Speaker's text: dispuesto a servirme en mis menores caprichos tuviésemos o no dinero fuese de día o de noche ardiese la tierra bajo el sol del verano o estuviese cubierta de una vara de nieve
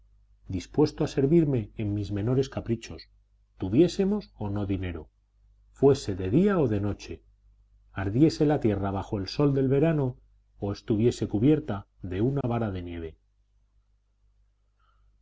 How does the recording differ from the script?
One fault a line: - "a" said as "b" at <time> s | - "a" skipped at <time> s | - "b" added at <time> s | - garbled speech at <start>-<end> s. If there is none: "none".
none